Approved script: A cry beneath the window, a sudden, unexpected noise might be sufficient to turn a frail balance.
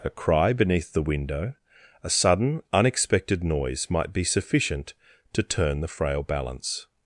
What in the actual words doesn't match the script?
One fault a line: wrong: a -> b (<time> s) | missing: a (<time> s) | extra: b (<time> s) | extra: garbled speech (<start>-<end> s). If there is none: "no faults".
wrong: a -> the (5.8 s)